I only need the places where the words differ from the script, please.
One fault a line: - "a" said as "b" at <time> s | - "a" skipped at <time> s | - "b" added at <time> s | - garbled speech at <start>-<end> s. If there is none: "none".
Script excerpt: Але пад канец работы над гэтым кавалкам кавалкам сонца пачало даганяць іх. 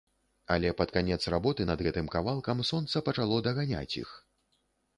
- "кавалкам" skipped at 2.6 s